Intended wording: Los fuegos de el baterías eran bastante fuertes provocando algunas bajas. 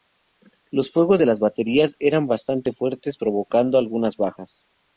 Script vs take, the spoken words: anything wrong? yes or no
yes